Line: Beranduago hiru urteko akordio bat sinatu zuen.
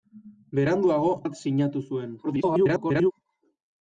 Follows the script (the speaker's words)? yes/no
no